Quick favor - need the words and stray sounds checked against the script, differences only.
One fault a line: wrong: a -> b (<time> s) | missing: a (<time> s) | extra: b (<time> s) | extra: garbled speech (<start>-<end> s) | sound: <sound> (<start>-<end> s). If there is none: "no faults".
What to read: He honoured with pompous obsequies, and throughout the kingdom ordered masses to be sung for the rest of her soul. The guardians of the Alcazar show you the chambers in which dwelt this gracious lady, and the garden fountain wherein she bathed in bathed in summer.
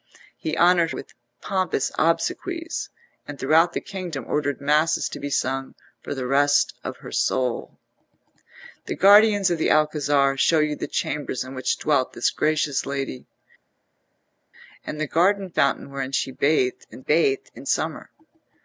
no faults